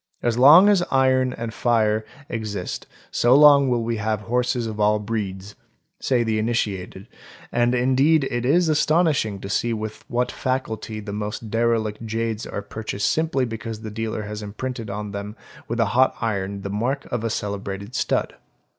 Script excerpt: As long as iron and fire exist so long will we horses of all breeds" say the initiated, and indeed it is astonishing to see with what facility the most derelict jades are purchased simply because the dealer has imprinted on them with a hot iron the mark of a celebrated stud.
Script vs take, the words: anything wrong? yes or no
yes